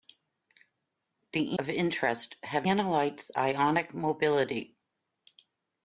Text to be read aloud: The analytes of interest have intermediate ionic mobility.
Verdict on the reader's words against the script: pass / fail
fail